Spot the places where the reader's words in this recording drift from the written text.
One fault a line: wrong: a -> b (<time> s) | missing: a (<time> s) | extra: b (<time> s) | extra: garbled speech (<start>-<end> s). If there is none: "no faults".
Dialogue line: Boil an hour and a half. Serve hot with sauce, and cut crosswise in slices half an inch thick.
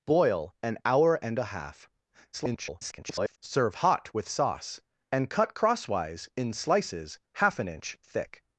extra: garbled speech (2.3-3.4 s)